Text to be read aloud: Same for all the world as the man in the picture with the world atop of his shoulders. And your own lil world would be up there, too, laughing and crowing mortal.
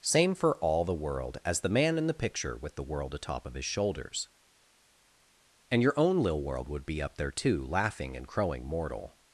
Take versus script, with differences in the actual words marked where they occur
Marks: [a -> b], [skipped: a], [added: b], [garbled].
Same for all the world as the man in the picture with the world atop of his shoulders. And your own lil world would be up there, too, laughing and crowing mortal.